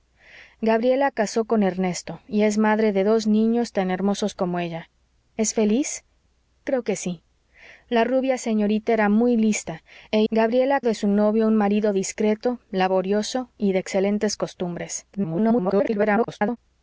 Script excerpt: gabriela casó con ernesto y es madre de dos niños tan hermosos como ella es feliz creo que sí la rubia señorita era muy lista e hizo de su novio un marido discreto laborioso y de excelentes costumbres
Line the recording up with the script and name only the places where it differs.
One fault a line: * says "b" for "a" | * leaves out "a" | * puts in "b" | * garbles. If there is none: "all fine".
* says "gabriela" for "hizo"
* garbles